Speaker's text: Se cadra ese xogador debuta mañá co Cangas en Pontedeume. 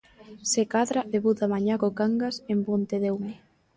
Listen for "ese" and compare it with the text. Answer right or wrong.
wrong